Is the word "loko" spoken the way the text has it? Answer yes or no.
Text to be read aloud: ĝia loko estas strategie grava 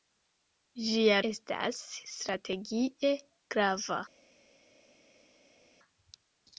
no